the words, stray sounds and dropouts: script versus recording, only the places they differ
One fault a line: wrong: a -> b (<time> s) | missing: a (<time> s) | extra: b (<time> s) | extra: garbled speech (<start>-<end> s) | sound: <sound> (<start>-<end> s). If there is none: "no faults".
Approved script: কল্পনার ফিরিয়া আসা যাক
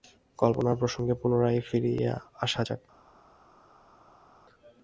extra: প্রসঙ্গে পুনরায় (0.8 s)